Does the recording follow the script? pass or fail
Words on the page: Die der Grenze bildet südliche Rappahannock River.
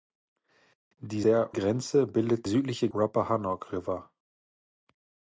pass